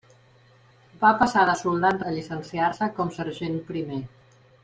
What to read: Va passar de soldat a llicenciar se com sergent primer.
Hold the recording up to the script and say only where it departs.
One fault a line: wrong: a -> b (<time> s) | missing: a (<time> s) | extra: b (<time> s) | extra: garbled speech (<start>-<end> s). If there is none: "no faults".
no faults